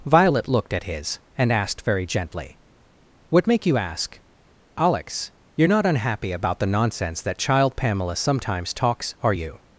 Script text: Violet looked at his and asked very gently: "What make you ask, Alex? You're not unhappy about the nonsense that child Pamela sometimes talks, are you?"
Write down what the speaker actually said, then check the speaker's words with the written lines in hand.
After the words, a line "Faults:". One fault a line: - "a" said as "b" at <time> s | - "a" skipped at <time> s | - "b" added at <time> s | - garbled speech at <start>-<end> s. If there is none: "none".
Violet looked at his and asked very gently: "What make you ask, Alex? You're not unhappy about the nonsense that child Pamela sometimes talks, are you?"
Faults:
none